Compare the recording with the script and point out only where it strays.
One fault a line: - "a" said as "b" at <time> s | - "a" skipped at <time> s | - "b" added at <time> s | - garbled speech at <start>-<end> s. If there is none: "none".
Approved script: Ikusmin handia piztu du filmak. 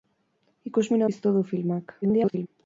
- "handia" skipped at 1.0 s
- garbled speech at 2.0-2.5 s